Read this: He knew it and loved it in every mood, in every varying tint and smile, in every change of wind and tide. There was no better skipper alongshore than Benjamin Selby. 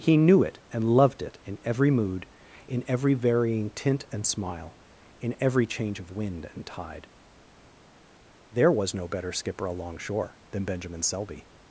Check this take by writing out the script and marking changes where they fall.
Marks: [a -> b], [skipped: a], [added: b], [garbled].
He knew it and loved it in every mood, in every varying tint and smile, in every change of wind and tide. There was no better skipper alongshore than Benjamin Selby.